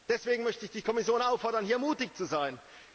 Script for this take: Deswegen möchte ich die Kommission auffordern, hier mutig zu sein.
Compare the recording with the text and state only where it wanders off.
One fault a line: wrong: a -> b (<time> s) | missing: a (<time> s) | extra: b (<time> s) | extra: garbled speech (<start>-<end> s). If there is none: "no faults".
no faults